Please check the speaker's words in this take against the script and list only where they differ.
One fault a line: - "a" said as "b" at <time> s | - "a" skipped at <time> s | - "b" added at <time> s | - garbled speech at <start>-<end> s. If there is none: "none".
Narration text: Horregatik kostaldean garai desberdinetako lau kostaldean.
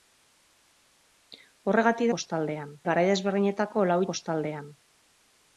none